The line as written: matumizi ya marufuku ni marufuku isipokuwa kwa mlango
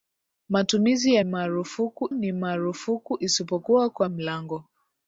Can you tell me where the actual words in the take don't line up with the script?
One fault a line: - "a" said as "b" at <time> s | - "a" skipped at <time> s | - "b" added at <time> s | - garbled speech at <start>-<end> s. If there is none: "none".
none